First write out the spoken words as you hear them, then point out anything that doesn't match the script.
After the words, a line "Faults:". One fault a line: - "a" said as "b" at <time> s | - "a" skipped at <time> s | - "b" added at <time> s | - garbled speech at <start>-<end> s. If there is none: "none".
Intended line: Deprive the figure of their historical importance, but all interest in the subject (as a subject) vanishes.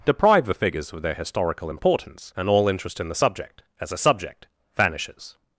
Deprive the figures of their historical importance, and all interest in the subject (as a subject) vanishes.
Faults:
- "figure" said as "figures" at 0.6 s
- "but" said as "and" at 2.4 s